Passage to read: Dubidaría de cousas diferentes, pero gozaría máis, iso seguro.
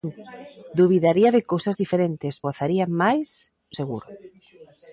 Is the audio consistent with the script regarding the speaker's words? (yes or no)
no